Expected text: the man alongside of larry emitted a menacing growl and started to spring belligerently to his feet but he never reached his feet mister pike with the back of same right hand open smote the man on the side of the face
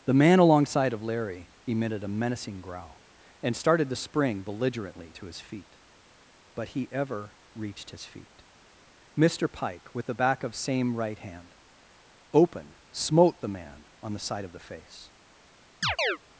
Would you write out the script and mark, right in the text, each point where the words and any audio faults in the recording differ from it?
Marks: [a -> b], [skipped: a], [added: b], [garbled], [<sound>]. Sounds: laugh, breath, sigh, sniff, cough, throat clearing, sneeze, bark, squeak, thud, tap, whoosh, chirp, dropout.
the man alongside of larry emitted a menacing growl and started to spring belligerently to his feet but he [never -> ever] reached his feet mister pike with the back of same right hand open smote the man on the side of the face [chirp]